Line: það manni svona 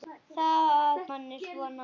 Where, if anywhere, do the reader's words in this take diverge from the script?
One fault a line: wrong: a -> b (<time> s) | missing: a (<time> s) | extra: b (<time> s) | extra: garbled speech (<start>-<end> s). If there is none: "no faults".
no faults